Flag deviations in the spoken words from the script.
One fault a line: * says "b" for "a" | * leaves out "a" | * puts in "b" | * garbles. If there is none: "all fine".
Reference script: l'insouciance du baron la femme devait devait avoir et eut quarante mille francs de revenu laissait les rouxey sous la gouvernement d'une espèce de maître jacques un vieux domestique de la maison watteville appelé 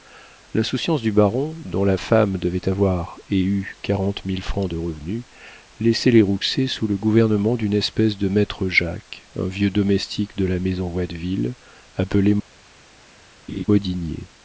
* puts in "dont"
* leaves out "devait"
* says "le" for "la"